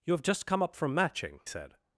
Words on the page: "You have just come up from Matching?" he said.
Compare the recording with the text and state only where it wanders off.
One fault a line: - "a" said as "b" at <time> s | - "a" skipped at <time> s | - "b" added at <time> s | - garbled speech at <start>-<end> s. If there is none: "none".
- "he" skipped at 1.4 s